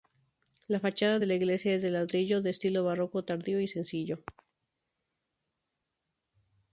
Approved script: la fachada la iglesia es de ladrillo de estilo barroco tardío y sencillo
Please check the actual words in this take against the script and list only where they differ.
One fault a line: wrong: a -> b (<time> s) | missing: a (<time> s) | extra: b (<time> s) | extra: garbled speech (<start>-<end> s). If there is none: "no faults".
extra: de (1.2 s)